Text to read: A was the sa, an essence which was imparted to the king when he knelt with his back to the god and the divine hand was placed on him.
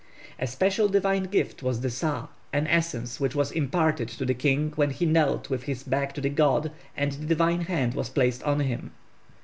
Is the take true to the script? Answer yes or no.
no